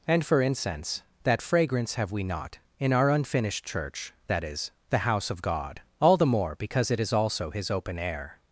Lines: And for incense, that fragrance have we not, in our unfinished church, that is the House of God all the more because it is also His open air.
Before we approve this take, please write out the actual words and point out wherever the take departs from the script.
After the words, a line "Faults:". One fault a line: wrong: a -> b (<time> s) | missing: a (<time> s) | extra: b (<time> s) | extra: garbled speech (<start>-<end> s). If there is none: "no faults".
And for incense, that fragrance have we not, in our unfinished church, that is the House of God all the more because it is also His open air.
Faults:
no faults